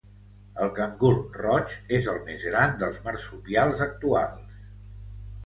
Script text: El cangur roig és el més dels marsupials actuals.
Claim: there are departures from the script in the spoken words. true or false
true